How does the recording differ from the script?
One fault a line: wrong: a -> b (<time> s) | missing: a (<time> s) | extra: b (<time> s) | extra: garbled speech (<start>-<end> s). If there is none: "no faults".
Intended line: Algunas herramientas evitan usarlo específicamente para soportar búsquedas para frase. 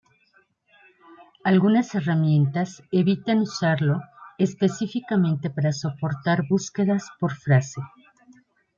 wrong: para -> por (7.2 s)